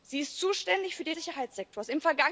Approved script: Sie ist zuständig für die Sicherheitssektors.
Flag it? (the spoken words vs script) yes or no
no